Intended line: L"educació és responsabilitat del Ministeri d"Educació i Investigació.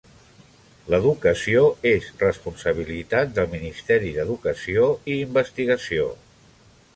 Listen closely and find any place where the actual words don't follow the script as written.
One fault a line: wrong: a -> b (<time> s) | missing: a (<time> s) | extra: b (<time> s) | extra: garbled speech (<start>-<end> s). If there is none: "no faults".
no faults